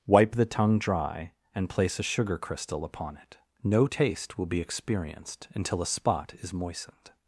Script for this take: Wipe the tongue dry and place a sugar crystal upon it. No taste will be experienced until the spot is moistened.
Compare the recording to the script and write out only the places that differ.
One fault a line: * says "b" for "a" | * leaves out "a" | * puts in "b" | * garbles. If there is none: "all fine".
* says "a" for "the"